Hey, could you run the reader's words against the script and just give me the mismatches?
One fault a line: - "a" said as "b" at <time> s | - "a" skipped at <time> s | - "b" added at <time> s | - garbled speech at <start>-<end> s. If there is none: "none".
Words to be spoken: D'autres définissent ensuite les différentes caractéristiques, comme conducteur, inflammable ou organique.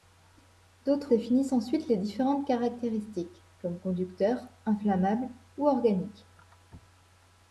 none